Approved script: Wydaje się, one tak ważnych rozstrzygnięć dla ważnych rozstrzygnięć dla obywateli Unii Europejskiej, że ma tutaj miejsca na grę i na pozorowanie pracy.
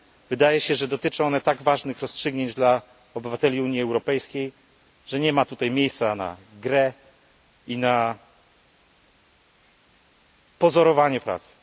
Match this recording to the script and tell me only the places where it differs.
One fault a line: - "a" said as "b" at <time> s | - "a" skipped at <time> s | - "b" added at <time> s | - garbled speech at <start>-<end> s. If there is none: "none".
- "że dotyczą" added at 0.8 s
- "ważnych rozstrzygnięć dla" skipped at 2.8 s
- "nie" added at 5.2 s